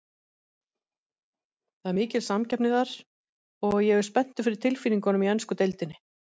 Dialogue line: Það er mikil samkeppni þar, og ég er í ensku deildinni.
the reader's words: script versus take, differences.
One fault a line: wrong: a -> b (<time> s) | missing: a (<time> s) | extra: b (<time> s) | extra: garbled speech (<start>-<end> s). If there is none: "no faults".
extra: spenntur fyrir tilfinningunum (4.1 s)